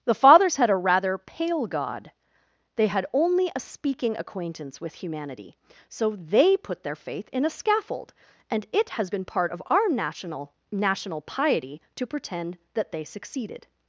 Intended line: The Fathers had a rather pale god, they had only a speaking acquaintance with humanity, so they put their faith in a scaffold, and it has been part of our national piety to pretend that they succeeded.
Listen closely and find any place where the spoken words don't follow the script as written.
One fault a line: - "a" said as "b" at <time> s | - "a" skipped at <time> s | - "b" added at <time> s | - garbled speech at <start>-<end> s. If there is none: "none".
- "national" added at 10.7 s